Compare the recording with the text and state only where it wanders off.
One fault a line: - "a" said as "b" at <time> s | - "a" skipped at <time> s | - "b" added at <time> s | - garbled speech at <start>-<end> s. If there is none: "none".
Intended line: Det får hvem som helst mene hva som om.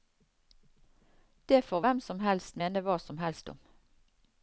- "helst" added at 3.3 s